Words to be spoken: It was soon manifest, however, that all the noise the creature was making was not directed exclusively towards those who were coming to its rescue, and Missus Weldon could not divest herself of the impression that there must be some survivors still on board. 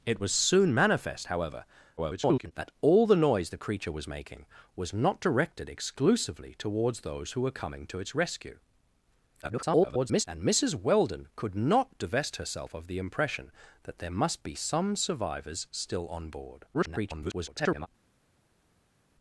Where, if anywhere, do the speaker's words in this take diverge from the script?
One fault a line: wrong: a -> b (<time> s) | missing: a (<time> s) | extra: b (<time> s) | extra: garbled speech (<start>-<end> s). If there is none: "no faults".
extra: garbled speech (2.0-2.5 s)
extra: garbled speech (9.4-10.2 s)
extra: garbled speech (16.7-17.9 s)